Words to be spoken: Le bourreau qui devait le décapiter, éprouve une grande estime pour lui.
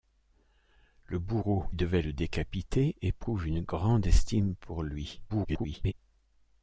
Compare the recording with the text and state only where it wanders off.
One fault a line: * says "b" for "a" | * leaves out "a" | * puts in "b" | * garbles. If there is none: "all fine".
* leaves out "qui"
* garbles